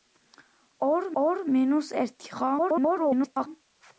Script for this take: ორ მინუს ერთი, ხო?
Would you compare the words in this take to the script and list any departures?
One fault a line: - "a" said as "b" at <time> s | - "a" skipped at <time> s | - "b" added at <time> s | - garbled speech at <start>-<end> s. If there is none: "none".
- "ორ" added at 1.2 s
- garbled speech at 2.6-3.5 s